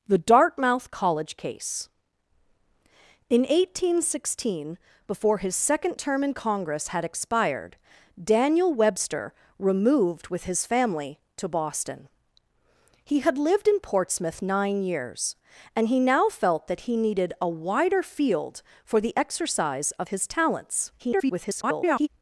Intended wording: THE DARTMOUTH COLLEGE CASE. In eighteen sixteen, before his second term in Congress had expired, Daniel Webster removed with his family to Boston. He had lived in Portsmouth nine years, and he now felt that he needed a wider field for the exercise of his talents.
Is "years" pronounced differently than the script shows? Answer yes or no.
no